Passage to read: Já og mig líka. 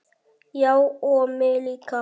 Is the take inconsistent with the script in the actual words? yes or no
no